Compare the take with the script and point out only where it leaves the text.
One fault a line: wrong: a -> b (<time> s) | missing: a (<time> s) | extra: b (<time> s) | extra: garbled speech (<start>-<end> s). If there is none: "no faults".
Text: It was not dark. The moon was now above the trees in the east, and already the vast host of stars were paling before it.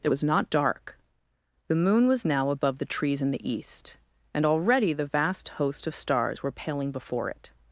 no faults